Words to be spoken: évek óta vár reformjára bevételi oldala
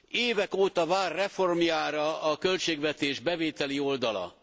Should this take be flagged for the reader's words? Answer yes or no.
yes